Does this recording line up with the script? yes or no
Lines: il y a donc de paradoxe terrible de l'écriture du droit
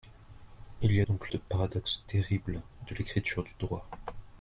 yes